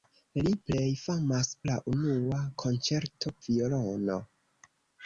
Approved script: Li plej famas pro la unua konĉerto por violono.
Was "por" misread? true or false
true